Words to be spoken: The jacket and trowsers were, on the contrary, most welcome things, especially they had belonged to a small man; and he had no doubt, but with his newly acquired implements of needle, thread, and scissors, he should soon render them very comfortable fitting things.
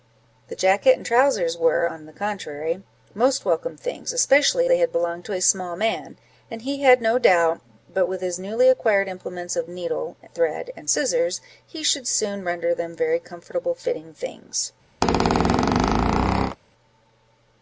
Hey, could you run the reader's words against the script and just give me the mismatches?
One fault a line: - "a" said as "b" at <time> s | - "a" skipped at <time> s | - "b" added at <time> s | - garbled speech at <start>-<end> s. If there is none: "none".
none